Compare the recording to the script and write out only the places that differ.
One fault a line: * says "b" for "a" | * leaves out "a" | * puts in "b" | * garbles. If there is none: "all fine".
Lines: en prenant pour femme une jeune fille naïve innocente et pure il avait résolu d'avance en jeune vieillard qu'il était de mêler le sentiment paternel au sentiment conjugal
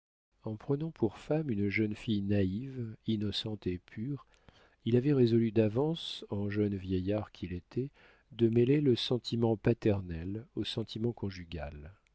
all fine